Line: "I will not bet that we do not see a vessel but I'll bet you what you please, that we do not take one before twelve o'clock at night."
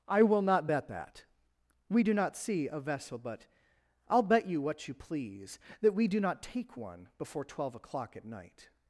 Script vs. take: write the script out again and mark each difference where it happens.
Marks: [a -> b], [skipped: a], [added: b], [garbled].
"I will not bet that we do not see a vessel but I'll bet you what you please, that we do not take one before twelve o'clock at night."